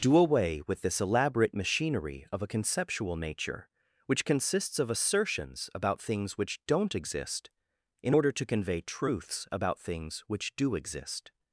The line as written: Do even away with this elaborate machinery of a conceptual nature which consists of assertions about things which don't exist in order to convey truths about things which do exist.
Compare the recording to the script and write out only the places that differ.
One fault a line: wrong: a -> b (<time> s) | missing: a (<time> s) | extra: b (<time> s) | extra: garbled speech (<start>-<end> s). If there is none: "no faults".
missing: even (0.2 s)